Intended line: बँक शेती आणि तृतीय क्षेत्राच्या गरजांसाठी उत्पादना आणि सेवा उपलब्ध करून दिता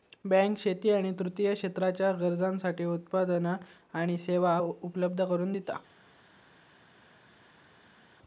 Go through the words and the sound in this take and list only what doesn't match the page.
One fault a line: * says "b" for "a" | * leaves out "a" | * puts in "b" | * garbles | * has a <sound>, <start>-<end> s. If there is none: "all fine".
all fine